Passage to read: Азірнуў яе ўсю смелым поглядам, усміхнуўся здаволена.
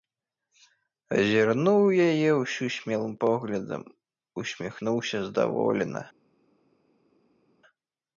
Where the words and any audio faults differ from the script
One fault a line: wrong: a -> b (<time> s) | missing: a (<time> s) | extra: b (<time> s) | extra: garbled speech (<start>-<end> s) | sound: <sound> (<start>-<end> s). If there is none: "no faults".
no faults